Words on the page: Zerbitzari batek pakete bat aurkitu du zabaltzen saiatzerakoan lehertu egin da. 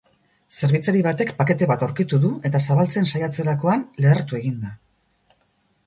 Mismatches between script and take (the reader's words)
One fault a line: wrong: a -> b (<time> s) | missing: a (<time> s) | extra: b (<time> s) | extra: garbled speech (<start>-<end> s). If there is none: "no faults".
extra: eta (2.5 s)